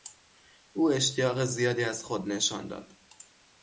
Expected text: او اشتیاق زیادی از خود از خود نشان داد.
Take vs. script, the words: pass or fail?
fail